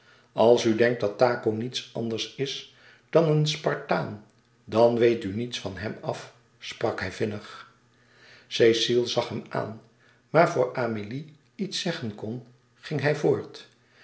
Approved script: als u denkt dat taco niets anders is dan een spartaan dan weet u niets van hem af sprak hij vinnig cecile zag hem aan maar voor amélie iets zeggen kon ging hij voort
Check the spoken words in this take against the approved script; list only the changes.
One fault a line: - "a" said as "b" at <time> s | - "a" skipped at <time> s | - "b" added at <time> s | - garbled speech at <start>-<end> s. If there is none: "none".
none